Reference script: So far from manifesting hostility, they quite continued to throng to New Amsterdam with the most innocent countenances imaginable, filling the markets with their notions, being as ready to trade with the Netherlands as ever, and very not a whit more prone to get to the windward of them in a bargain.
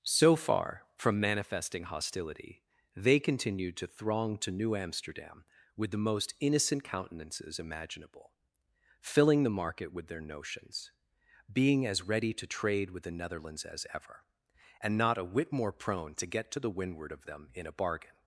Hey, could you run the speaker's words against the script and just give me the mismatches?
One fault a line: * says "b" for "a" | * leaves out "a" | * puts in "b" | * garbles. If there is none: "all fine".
* leaves out "quite"
* says "market" for "markets"
* leaves out "very"